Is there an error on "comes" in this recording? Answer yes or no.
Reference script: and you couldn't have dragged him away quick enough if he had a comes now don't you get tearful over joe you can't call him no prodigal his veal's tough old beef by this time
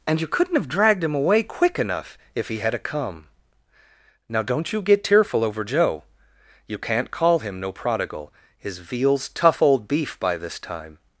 yes